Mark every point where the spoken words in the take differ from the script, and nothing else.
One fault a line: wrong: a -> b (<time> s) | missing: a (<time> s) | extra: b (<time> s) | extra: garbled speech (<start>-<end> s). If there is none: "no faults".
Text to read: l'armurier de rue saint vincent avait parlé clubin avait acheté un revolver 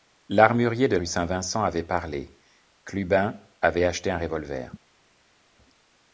no faults